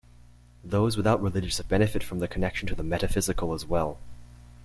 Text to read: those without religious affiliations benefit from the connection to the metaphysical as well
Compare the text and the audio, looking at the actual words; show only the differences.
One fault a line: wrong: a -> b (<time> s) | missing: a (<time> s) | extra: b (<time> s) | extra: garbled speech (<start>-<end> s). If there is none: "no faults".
missing: affiliations (1.6 s)